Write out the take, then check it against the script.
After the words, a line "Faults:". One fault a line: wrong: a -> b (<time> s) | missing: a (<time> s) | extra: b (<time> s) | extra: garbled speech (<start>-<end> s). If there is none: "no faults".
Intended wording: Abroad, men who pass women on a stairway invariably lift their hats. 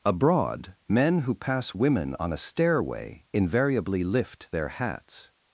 Abroad, men who pass women on a stairway invariably lift their hats.
Faults:
no faults